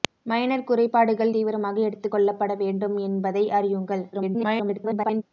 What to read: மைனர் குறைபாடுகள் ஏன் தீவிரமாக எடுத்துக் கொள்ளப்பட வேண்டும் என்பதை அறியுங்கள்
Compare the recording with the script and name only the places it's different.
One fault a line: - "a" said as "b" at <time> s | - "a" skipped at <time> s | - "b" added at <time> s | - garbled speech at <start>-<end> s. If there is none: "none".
- "ஏன்" skipped at 1.3 s
- garbled speech at 4.1-5.2 s